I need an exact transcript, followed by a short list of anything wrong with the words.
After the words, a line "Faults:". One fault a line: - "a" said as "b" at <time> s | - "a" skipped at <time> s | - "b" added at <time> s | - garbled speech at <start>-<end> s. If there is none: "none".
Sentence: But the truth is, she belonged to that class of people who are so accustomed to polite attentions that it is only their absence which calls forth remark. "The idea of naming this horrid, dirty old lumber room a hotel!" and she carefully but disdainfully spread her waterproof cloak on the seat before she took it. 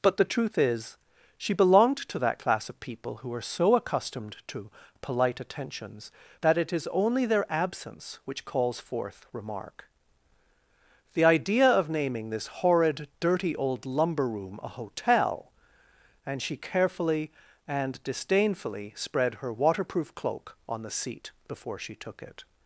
But the truth is, she belonged to that class of people who are so accustomed to polite attentions that it is only their absence which calls forth remark. "The idea of naming this horrid, dirty old lumber room a hotel!" and she carefully and disdainfully spread her waterproof cloak on the seat before she took it.
Faults:
- "but" said as "and" at 17.7 s